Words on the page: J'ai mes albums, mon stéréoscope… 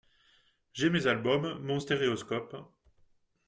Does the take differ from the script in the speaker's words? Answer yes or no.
no